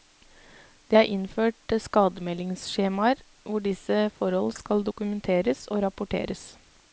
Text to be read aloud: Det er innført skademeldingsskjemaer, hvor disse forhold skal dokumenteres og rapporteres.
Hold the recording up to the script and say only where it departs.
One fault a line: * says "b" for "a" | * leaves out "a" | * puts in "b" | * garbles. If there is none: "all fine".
all fine